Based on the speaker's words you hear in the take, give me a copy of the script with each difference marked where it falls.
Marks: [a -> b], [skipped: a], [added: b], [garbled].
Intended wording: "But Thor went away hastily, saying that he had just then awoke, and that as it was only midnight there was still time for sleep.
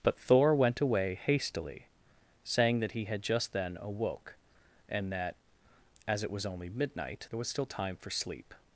"But Thor went away hastily, saying that he had just then awoke, and that as it was only midnight there was still time for sleep.